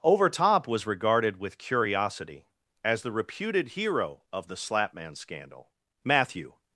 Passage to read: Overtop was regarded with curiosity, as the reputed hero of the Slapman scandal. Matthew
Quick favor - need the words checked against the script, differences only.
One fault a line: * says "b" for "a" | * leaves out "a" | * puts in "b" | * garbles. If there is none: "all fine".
all fine